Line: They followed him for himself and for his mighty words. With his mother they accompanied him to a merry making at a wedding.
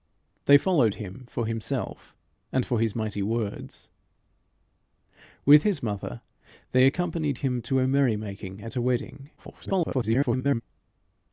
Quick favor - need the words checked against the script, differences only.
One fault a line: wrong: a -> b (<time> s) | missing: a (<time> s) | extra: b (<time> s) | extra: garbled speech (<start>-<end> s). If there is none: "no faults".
extra: garbled speech (9.4-10.6 s)